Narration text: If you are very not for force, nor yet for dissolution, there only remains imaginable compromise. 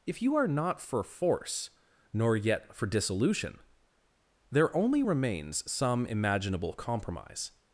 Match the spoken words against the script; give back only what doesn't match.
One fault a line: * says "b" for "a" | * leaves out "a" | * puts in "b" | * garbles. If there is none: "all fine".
* leaves out "very"
* puts in "some"